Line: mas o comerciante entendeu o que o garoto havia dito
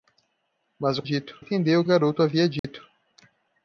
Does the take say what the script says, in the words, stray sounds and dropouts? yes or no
no